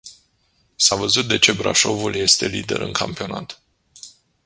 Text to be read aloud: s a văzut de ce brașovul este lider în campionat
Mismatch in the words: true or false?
false